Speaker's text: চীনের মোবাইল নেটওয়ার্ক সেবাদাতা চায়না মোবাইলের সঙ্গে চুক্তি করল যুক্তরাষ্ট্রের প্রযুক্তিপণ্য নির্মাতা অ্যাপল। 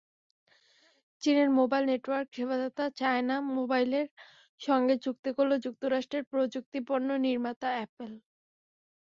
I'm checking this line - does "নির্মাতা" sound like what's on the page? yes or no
yes